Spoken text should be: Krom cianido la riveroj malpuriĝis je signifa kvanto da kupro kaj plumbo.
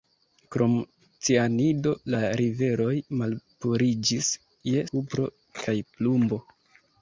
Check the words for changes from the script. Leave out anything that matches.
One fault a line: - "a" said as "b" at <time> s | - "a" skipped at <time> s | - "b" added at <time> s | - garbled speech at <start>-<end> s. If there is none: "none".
- "signifa kvanto da" skipped at 4.8 s